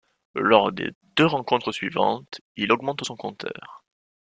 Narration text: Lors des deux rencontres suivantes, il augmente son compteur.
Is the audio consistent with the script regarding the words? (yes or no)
yes